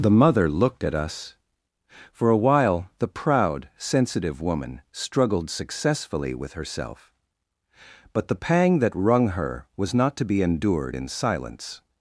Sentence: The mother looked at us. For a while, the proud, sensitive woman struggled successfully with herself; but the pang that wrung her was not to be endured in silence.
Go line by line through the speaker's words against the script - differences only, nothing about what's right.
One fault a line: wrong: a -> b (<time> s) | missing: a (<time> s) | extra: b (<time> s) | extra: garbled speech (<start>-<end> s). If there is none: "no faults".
no faults